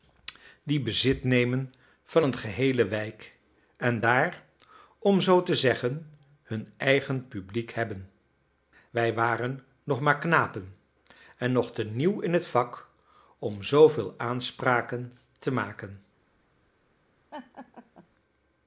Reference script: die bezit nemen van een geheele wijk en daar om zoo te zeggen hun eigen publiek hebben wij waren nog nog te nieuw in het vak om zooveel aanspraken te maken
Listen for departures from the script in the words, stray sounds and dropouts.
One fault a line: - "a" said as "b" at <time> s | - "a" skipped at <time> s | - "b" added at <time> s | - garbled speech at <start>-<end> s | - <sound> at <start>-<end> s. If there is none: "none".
- "maar knapen en" added at 10.0 s
- laugh at 17.3-18.1 s